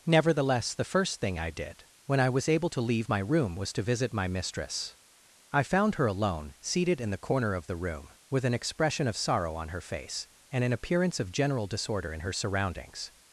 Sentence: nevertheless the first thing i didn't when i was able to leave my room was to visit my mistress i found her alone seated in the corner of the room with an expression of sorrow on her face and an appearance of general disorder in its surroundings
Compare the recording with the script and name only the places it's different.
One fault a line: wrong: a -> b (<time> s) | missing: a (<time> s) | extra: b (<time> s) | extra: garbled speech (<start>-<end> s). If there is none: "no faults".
wrong: didn't -> did (1.5 s)
wrong: its -> her (12.2 s)